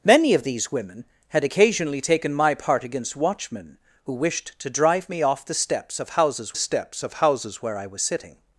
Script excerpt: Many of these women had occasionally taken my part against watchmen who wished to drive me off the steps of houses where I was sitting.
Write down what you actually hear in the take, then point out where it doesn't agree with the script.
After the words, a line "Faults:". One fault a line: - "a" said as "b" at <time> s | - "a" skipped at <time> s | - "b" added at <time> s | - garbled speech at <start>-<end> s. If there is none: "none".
Many of these women had occasionally taken my part against watchmen who wished to drive me off the steps of houses steps of houses where I was sitting.
Faults:
- "steps of houses" added at 6.5 s